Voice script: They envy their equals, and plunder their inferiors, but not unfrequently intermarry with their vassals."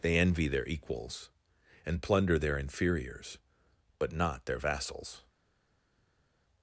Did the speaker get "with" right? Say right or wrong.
wrong